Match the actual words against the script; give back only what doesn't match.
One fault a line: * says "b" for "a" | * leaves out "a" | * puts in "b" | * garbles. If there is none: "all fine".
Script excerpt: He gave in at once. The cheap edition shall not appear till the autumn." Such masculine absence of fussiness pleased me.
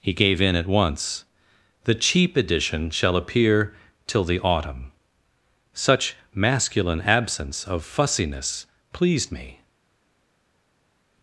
* leaves out "not"